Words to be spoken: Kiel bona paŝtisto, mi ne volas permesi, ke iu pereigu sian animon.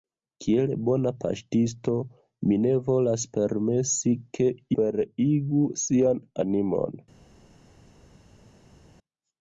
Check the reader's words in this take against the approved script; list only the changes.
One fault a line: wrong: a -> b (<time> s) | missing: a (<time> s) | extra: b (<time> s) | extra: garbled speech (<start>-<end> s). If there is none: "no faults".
missing: iu (4.5 s)